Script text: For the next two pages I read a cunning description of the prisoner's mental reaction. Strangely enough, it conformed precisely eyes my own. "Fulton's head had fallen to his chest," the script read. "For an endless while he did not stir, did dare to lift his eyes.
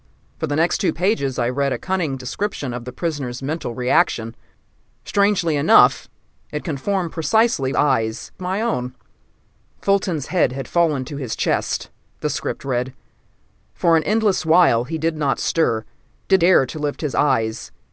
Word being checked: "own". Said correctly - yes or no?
yes